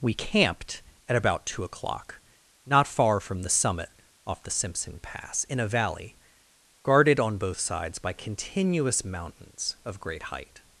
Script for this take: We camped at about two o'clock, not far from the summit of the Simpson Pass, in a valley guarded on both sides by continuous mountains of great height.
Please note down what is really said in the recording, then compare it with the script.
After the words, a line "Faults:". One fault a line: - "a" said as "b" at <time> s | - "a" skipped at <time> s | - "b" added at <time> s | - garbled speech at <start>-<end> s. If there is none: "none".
We camped at about two o'clock, not far from the summit off the Simpson Pass, in a valley guarded on both sides by continuous mountains of great height.
Faults:
- "of" said as "off" at 4.2 s